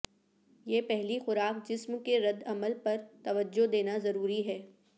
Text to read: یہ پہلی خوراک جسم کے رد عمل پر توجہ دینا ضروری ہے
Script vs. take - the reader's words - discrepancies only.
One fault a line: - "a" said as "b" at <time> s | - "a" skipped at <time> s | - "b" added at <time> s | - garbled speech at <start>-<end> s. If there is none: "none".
none